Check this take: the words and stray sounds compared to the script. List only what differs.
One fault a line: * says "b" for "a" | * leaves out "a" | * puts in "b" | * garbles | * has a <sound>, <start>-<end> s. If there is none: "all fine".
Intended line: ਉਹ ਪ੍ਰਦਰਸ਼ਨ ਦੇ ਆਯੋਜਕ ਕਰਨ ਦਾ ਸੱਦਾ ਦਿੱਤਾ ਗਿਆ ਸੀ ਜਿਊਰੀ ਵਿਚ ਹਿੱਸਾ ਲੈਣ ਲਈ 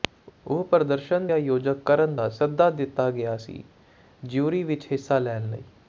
* leaves out "ਦੇ"